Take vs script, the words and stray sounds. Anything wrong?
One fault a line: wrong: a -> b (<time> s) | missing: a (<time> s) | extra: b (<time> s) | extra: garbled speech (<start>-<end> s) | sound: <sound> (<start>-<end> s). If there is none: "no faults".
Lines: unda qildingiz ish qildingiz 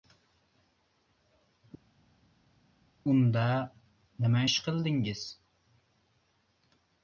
wrong: qildingiz -> nima (4.2 s)